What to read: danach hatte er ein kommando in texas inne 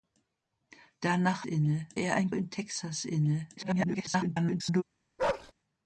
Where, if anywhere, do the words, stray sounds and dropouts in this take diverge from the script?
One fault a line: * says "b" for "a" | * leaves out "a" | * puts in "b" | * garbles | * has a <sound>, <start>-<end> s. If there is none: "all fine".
* says "inne" for "hatte"
* leaves out "kommando"
* garbles
* has a bark, 5.2-5.5 s